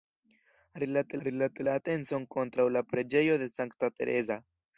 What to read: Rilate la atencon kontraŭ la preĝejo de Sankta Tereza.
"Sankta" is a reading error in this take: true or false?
false